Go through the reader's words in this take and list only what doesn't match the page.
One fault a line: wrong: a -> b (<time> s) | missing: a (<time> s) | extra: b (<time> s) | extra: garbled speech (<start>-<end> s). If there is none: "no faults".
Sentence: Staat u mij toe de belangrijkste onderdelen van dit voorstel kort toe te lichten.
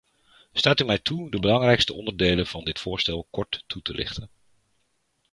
no faults